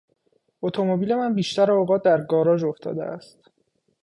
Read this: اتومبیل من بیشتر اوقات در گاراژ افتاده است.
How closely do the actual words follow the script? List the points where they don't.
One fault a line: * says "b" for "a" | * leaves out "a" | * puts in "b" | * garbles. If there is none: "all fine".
all fine